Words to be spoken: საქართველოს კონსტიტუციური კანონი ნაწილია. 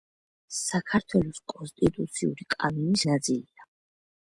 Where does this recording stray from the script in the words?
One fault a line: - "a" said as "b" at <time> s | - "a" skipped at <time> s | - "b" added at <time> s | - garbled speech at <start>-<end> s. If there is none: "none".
none